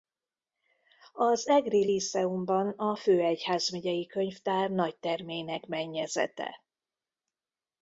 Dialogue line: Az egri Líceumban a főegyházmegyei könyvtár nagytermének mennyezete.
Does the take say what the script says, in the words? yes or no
yes